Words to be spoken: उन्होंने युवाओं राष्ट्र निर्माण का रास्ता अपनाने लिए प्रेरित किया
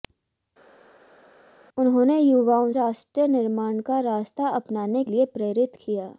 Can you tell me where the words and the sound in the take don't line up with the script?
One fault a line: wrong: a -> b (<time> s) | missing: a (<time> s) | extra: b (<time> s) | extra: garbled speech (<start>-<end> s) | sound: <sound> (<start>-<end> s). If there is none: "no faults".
no faults